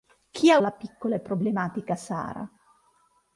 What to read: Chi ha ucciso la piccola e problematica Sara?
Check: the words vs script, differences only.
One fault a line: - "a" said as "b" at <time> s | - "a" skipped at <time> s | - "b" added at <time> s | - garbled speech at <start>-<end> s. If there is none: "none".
- "ucciso" skipped at 0.6 s